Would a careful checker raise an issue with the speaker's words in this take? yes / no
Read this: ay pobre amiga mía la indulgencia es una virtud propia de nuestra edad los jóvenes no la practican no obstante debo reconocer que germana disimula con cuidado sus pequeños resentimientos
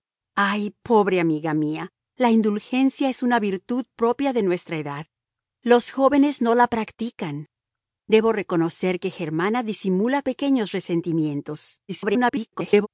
yes